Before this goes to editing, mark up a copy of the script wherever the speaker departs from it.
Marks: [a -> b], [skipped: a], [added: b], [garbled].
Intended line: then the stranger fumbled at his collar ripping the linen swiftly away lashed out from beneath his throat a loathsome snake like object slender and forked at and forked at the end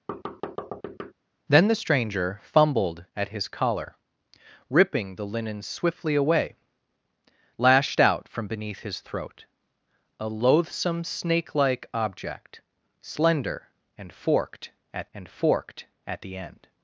then the stranger fumbled at his collar ripping the linen swiftly away lashed out from beneath his throat a loathsome snake like object slender and forked at and forked at the end